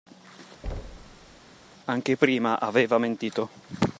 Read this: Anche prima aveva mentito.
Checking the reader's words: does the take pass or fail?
pass